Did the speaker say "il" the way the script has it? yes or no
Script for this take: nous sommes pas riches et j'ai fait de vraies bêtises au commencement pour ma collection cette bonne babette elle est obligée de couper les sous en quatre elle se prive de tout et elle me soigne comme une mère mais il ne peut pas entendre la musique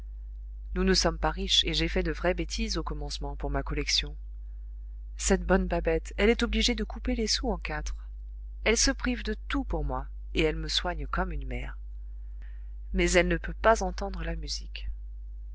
no